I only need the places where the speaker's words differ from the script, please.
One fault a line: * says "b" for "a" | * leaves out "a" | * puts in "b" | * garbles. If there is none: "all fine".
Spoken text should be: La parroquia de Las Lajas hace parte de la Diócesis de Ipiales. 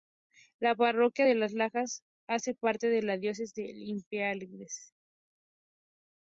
all fine